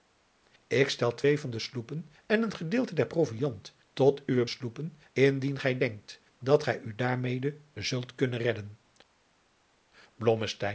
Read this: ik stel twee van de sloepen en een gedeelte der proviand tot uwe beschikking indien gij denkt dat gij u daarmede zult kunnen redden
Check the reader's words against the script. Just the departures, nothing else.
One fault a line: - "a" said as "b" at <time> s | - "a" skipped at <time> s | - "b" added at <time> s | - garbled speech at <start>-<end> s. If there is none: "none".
- "beschikking" said as "sloepen" at 4.5 s